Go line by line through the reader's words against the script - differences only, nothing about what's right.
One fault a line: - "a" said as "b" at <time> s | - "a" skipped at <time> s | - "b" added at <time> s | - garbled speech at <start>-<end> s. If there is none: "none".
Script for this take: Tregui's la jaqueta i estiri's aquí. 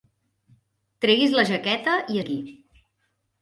- "estiri's" skipped at 2.2 s